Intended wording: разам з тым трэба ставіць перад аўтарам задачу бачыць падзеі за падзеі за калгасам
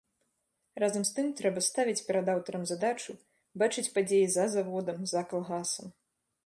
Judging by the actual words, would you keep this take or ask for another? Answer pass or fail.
fail